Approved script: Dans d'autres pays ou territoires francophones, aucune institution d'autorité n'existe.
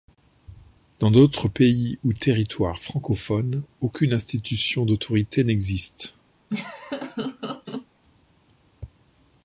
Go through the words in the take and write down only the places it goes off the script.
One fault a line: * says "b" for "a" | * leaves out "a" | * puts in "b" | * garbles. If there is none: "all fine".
all fine